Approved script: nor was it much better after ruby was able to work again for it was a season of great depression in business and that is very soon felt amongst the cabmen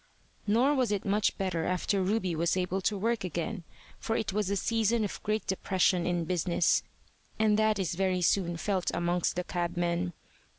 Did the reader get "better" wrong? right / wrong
right